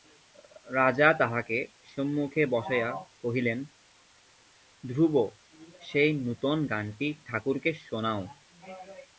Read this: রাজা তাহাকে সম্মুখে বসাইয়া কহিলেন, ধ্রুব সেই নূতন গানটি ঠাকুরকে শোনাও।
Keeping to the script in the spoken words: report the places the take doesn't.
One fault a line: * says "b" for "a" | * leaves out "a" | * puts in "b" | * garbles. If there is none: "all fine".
all fine